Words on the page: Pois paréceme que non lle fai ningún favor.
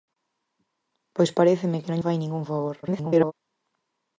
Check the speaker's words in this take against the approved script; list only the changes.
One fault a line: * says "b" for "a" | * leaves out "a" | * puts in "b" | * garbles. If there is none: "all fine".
* leaves out "lle"
* garbles